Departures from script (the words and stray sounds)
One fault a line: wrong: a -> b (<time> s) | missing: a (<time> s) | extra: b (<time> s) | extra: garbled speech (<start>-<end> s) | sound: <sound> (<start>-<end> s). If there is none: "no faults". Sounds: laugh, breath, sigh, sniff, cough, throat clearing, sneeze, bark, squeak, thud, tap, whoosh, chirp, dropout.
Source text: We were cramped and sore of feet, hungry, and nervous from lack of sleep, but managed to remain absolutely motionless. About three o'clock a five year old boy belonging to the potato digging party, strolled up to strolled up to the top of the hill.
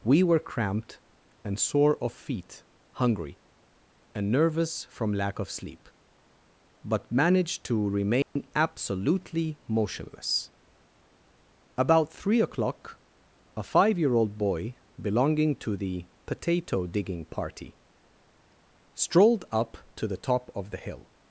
sound: dropout (8.2-8.4 s)
missing: strolled up to (20.1 s)